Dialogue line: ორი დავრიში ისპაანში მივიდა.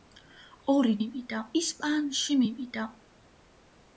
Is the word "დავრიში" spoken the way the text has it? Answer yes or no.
no